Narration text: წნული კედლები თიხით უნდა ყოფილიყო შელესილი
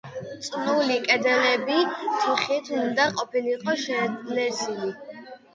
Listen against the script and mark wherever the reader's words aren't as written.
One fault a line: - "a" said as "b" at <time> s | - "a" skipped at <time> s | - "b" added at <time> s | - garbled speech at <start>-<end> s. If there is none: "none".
none